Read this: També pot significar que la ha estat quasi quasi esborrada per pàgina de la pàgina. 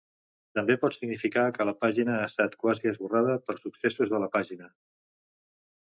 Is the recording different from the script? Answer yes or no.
yes